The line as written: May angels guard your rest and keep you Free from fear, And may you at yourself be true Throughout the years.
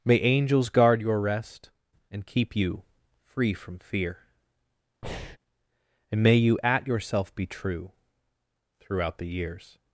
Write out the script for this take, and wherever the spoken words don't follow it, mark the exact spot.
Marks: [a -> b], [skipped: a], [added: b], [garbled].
May angels guard your rest and keep you Free from fear, And may you at yourself be true Throughout the years.